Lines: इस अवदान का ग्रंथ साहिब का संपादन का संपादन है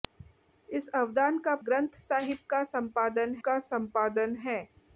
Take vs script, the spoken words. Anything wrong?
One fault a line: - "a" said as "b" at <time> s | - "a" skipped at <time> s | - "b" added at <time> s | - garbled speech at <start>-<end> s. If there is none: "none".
none